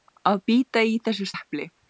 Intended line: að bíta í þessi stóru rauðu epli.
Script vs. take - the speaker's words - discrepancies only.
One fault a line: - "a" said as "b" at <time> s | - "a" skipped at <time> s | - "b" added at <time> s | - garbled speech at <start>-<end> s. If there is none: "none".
- "stóru rauðu" skipped at 1.3 s